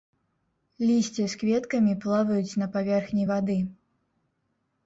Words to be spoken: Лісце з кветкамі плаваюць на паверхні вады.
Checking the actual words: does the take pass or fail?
pass